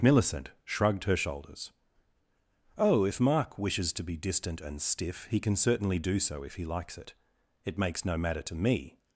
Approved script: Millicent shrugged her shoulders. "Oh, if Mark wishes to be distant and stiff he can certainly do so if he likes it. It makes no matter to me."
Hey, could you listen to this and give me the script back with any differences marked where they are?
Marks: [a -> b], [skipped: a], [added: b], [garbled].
Millicent shrugged her shoulders. "Oh, if Mark wishes to be distant and stiff he can certainly do so if he likes it. It makes no matter to me."